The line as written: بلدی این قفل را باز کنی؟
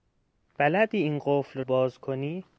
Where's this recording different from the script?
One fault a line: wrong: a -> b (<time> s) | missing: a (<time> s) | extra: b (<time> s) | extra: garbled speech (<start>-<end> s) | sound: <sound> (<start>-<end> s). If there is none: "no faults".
missing: را (1.6 s)